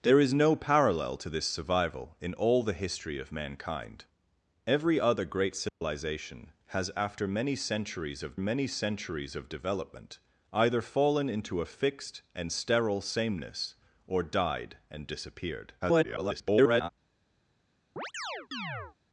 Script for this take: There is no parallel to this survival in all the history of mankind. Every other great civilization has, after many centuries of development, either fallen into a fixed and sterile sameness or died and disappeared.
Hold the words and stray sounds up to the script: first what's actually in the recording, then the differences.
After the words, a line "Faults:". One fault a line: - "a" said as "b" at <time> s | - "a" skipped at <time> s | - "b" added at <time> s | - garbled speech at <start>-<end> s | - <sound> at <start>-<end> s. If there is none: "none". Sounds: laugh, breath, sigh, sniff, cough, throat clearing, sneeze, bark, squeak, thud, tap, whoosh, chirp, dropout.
There is no parallel to this survival in all the history of mankind. Every other great civilization has, after many centuries of many centuries of development, either fallen into a fixed and sterile sameness or died and disappeared. [garbled]
Faults:
- dropout at 5.7-5.8 s
- "many centuries of" added at 8.4 s
- garbled speech at 15.8-16.9 s
- chirp at 18.0-19.0 s